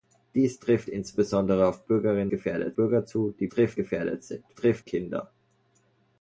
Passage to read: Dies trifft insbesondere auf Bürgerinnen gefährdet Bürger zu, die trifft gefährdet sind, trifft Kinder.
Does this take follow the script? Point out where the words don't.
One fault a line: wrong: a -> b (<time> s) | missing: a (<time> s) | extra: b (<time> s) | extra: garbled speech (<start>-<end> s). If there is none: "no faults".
no faults